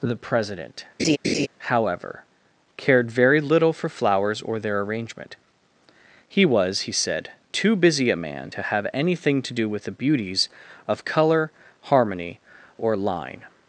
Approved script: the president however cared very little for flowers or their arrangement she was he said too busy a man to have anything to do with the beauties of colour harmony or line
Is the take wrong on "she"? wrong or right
wrong